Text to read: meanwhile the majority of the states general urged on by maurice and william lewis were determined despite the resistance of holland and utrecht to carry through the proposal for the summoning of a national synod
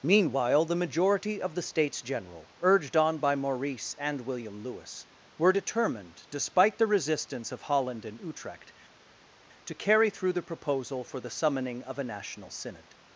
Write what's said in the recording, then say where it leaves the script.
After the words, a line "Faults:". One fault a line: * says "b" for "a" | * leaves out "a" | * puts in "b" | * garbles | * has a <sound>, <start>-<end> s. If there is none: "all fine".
meanwhile the majority of the states general urged on by maurice and william lewis were determined despite the resistance of holland and utrecht to carry through the proposal for the summoning of a national synod
Faults:
all fine